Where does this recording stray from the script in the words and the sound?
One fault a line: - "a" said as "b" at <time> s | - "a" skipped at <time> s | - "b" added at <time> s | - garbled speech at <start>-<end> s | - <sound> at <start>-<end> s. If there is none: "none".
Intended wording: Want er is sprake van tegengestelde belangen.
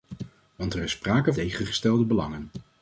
- "van" skipped at 1.3 s